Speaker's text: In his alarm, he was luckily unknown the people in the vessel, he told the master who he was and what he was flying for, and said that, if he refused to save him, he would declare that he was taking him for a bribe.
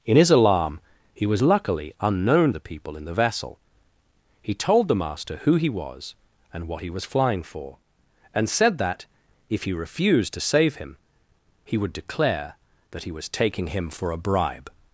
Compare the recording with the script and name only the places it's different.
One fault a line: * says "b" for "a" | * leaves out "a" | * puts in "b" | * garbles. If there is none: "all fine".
all fine